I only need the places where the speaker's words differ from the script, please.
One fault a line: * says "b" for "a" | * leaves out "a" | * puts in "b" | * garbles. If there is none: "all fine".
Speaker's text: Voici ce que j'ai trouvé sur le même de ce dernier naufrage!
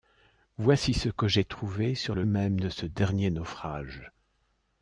all fine